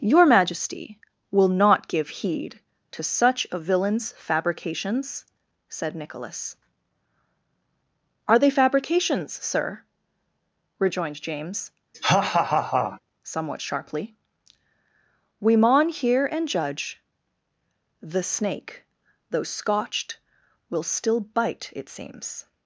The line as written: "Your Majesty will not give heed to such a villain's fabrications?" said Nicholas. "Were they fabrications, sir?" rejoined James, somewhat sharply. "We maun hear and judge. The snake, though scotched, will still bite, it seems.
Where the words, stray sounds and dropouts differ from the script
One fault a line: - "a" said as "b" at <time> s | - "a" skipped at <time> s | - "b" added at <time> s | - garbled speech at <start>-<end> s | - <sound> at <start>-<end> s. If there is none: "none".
- "Were" said as "Are" at 8.3 s
- laugh at 11.9-13.0 s